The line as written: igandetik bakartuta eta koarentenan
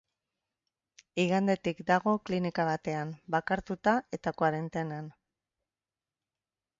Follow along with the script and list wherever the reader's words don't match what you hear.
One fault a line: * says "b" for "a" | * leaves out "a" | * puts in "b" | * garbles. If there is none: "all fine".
* puts in "dago klinika batean"